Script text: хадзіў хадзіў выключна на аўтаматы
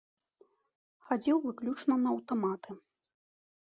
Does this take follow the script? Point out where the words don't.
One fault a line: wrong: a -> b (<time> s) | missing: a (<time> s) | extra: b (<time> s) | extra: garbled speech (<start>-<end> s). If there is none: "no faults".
missing: хадзіў (1.4 s)